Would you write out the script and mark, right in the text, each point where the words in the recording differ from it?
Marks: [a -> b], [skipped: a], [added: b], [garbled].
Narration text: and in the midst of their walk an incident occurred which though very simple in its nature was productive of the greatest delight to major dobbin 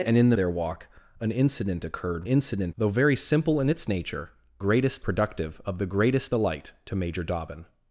and in the [skipped: midst of] their walk an incident occurred [which -> incident] though very simple in its nature [was -> greatest] productive of the greatest delight to major dobbin